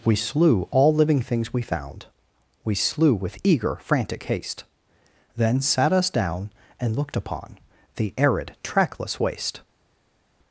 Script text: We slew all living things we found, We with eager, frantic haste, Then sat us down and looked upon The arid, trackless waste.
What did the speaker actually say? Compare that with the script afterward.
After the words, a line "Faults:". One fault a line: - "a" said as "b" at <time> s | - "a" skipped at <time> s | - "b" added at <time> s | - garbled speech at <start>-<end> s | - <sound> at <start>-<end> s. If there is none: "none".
We slew all living things we found, We slew with eager, frantic haste, Then sat us down and looked upon The arid, trackless waste.
Faults:
- "slew" added at 2.8 s